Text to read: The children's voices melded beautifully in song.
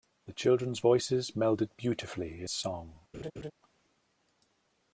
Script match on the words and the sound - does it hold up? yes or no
no